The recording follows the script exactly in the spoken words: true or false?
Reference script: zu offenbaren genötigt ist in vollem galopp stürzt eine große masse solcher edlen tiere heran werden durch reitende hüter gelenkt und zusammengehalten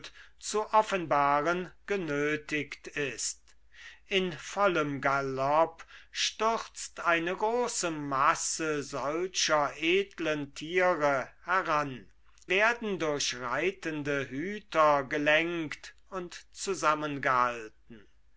true